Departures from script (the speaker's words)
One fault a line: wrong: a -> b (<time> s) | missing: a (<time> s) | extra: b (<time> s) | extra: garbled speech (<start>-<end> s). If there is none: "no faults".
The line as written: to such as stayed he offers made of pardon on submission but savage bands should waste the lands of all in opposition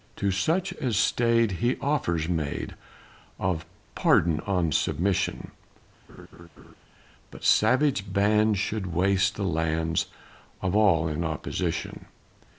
no faults